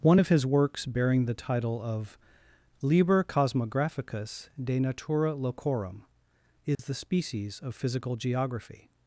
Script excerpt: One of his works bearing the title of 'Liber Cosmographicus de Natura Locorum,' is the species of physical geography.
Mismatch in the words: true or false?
false